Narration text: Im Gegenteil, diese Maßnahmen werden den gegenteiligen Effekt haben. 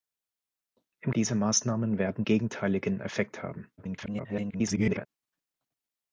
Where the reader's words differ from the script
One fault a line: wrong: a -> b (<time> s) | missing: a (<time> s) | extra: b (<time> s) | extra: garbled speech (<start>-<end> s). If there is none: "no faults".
missing: Gegenteil (1.1 s)
missing: den (2.2 s)
extra: garbled speech (3.8-5.1 s)